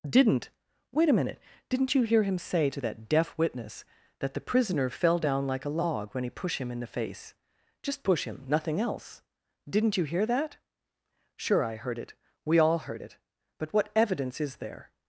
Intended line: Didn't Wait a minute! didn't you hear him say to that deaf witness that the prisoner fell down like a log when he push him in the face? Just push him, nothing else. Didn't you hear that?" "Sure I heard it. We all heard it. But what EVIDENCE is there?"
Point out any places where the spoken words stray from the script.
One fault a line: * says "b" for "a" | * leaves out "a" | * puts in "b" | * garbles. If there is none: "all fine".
* says "pushed" for "push"